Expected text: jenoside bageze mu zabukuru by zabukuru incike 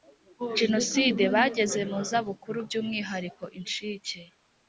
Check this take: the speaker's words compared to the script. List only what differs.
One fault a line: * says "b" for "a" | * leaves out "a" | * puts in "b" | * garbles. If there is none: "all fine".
* says "umwihariko" for "zabukuru"